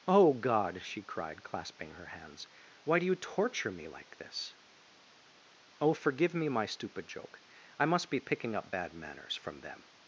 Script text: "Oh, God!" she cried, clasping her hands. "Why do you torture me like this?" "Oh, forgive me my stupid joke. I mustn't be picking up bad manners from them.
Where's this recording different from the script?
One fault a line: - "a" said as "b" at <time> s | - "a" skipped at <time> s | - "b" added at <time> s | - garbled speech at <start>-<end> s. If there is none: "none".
- "mustn't" said as "must" at 7.8 s